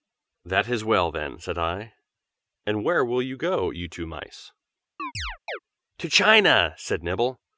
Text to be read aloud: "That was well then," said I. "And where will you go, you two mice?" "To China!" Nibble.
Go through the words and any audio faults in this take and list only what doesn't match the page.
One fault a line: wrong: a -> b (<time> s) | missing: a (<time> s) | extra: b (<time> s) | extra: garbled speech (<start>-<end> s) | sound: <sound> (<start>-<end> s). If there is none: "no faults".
wrong: was -> is (0.7 s)
sound: chirp (5.0-5.6 s)
extra: said (6.8 s)